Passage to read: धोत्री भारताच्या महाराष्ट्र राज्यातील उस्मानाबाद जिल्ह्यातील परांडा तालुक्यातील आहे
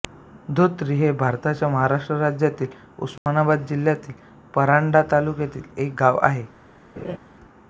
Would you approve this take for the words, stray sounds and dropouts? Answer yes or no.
no